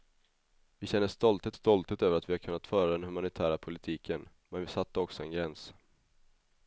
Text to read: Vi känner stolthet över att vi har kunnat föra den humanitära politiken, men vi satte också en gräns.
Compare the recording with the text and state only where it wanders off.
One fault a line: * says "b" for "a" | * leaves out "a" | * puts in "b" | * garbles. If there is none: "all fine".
* puts in "stolthet"